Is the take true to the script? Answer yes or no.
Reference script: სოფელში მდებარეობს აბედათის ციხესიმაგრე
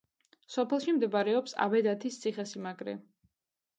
yes